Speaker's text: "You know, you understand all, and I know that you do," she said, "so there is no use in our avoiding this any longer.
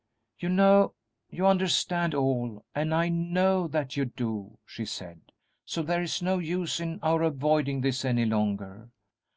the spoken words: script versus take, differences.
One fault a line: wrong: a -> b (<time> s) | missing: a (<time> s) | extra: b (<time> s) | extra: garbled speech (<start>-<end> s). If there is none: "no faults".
no faults